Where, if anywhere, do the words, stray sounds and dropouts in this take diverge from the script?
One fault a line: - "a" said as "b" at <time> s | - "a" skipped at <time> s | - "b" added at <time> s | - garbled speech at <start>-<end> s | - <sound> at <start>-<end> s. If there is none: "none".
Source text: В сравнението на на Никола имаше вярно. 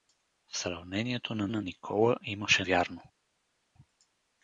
none